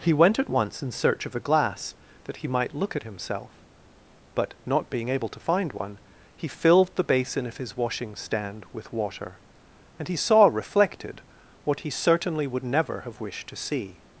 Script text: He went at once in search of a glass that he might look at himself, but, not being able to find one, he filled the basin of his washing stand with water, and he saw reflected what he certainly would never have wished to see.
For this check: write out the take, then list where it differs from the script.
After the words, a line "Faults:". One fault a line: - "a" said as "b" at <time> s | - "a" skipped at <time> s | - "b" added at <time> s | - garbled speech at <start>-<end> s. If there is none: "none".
He went at once in search of a glass that he might look at himself, but, not being able to find one, he filled the basin of his washing stand with water, and he saw reflected what he certainly would never have wished to see.
Faults:
none